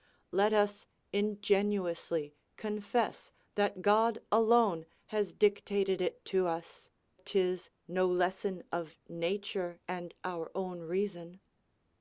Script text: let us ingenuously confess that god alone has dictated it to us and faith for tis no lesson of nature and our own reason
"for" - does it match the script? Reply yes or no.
no